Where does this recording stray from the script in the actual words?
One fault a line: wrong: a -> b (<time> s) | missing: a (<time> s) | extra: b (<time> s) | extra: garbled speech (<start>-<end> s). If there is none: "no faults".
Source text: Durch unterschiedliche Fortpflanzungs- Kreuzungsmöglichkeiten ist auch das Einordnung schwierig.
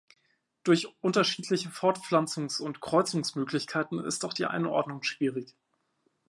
extra: und (2.6 s)
wrong: das -> die (4.3 s)